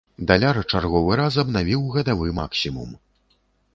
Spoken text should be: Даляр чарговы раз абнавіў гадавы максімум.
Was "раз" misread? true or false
false